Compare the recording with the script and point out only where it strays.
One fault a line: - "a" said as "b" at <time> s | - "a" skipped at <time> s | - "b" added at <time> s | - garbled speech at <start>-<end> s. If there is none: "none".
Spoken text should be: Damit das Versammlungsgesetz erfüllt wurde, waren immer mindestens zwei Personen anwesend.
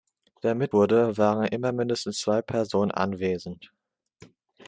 - "das Versammlungsgesetz erfüllt" skipped at 0.7 s